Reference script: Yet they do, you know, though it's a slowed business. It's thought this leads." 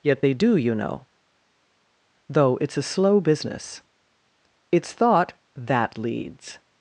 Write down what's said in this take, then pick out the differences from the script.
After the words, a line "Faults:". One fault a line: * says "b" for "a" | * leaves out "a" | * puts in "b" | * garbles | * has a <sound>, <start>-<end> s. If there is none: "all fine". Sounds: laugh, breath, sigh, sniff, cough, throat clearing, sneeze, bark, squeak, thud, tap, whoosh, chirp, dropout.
Yet they do, you know, though it's a slow business. It's thought that leads."
Faults:
* says "slow" for "slowed"
* says "that" for "this"